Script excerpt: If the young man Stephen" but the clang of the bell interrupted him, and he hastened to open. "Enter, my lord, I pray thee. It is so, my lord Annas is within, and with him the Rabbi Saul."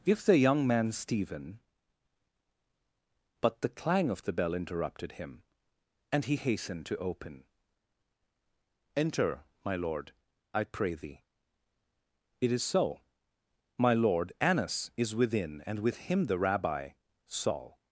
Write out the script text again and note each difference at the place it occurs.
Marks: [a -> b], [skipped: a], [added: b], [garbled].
If the young man Stephen" but the clang of the bell interrupted him, and he hastened to open. "Enter, my lord, I pray thee. It is so, my lord Annas is within, and with him the Rabbi Saul."